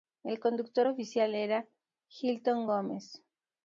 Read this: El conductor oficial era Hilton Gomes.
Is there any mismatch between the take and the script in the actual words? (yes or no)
no